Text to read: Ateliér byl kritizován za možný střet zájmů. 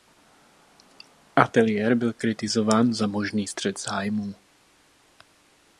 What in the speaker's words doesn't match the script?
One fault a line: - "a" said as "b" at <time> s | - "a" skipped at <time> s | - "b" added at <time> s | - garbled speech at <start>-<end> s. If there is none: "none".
none